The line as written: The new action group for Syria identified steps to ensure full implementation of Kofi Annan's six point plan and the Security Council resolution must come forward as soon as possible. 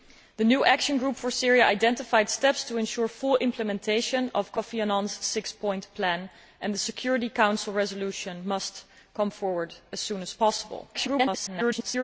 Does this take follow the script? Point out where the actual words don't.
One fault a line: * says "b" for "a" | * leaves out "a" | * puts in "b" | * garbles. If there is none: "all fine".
* garbles